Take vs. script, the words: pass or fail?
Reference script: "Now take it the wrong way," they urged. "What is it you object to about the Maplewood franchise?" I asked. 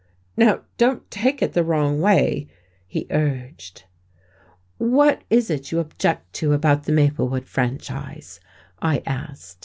fail